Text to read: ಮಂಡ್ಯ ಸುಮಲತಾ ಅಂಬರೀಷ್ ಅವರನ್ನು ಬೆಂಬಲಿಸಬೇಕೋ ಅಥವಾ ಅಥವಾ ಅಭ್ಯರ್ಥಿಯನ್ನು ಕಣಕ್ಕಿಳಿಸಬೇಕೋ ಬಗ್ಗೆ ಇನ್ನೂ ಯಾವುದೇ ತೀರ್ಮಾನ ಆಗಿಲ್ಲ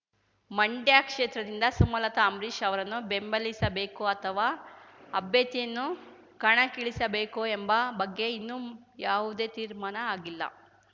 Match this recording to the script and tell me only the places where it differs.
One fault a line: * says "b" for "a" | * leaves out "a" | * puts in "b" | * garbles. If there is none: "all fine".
* puts in "ಕ್ಷೇತ್ರದಿಂದ"
* leaves out "ಅಥವಾ"
* puts in "ಎಂಬ"